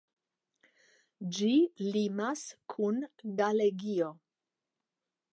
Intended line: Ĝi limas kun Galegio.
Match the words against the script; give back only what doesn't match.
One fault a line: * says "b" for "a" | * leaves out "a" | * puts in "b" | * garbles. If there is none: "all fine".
all fine